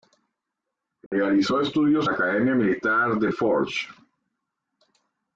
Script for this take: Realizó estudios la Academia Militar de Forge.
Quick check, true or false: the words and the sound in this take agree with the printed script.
false